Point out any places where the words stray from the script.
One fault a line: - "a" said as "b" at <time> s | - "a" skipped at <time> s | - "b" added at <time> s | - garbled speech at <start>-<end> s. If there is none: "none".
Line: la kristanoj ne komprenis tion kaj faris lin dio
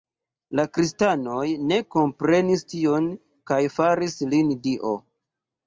none